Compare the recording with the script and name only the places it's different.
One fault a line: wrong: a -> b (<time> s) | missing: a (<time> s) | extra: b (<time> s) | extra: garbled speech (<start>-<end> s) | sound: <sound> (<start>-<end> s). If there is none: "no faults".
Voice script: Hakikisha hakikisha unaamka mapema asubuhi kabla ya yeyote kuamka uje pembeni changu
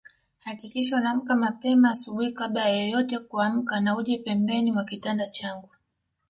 missing: hakikisha (1.0 s)
extra: na (3.8 s)
extra: mwa kitanda (4.7 s)